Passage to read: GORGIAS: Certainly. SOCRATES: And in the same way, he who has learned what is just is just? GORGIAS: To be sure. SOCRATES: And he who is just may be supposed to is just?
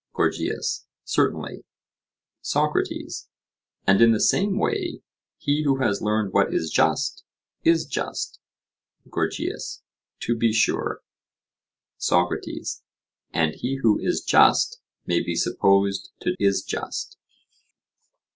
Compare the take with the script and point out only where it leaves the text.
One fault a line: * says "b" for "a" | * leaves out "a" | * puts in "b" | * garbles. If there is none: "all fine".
all fine